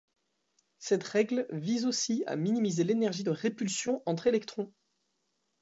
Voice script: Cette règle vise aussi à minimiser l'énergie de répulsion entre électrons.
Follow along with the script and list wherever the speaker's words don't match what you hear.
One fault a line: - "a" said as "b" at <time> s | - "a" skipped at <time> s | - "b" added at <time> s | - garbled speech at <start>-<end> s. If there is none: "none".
none